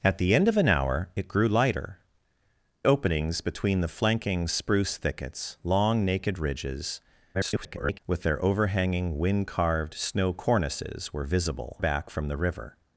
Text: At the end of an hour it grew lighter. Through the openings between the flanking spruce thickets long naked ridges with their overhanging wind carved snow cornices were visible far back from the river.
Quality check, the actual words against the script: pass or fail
fail